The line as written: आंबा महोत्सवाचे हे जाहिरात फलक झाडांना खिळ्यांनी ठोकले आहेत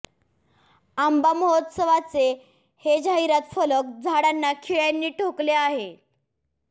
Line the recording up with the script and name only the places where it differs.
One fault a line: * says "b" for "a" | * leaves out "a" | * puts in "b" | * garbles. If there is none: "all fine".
all fine